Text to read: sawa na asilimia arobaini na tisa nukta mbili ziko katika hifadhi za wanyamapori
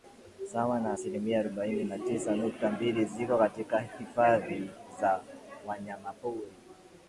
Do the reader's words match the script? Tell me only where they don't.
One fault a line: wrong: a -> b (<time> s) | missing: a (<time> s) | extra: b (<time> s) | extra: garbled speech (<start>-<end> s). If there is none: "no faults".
no faults